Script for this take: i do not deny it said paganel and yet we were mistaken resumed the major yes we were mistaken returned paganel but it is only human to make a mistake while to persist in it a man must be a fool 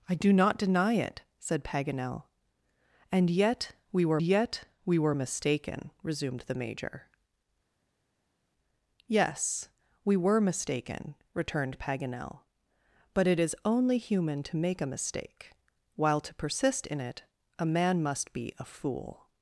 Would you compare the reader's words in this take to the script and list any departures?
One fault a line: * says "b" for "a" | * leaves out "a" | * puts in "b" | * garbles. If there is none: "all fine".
* puts in "yet we were"